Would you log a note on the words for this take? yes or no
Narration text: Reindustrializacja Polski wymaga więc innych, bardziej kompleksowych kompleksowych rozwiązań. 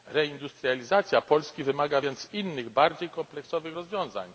yes